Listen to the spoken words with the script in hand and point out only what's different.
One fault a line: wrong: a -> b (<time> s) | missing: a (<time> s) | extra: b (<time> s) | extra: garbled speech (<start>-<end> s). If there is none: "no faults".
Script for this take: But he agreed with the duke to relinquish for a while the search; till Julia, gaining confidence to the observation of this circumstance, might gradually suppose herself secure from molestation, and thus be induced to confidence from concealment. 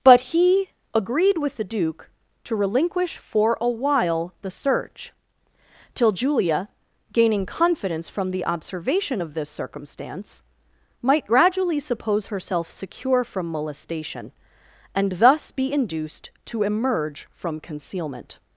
wrong: to -> from (8.1 s)
wrong: confidence -> emerge (16.6 s)